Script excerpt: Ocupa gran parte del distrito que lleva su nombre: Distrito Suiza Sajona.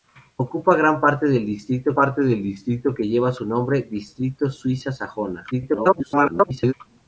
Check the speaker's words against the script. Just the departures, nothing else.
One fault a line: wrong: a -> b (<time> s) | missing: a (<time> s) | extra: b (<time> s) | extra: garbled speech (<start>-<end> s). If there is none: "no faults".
extra: parte del distrito (2.0 s)
extra: garbled speech (5.5-6.7 s)